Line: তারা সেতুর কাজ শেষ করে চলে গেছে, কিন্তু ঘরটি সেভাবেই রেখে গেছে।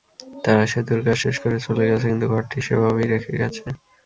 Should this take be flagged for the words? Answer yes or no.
no